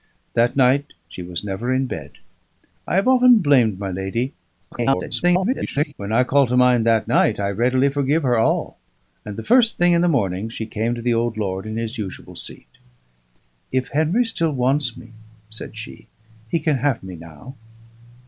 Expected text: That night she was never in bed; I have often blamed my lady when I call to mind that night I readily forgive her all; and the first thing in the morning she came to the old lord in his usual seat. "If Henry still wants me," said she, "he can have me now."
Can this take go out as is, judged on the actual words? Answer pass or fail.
fail